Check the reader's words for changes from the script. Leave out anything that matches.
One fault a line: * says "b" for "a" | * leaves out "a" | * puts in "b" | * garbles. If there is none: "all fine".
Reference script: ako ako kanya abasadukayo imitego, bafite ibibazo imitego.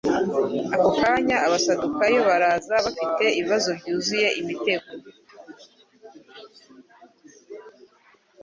* leaves out "ako"
* says "baraza" for "imitego"
* puts in "byuzuye"